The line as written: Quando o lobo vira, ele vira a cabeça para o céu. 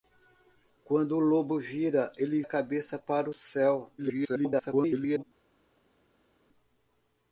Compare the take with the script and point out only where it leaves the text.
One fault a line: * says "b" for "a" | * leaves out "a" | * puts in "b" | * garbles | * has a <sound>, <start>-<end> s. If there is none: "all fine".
* leaves out "vira"
* garbles